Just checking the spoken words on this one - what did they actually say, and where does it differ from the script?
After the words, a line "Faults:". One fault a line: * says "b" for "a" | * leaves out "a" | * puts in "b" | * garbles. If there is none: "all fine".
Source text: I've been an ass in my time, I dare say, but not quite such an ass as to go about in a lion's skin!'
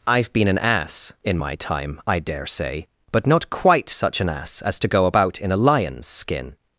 I've been an ass in my time, I dare say, but not quite such an ass as to go about in a lion's skin!'
Faults:
all fine